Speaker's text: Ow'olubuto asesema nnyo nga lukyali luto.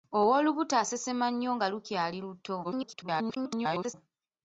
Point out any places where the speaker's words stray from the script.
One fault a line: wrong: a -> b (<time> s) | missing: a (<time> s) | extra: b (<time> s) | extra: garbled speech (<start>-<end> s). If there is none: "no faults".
extra: garbled speech (2.6-3.9 s)